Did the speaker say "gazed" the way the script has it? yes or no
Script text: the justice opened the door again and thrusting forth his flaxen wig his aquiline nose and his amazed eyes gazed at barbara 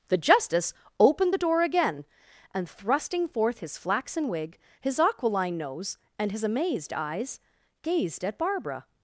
yes